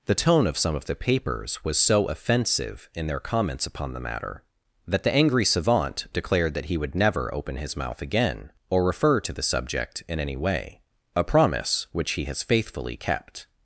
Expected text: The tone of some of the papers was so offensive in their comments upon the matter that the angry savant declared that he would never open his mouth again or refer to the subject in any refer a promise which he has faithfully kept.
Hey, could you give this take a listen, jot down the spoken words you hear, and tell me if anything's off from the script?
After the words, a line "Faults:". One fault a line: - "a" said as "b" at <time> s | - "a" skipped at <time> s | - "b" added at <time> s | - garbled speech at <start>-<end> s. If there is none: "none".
The tone of some of the papers was so offensive in their comments upon the matter that the angry savant declared that he would never open his mouth again or refer to the subject in any way a promise which he has faithfully kept.
Faults:
- "refer" said as "way" at 10.3 s